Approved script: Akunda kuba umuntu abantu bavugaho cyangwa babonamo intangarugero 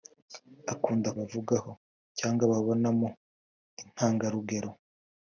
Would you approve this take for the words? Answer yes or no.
no